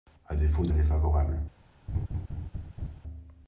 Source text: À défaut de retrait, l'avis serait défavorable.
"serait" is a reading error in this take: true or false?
true